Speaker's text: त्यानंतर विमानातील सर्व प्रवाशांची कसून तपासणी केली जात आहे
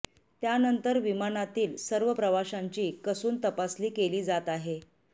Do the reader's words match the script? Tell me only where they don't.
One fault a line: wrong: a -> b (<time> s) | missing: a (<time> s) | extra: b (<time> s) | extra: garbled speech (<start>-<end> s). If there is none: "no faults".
no faults